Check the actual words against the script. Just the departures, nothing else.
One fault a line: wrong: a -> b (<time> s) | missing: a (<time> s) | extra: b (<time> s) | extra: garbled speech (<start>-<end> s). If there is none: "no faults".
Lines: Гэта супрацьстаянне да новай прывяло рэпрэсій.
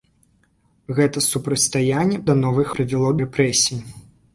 no faults